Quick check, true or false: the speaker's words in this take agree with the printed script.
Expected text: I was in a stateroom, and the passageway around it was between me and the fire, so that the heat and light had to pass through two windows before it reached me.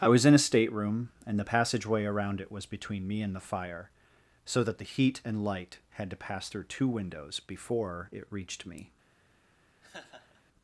true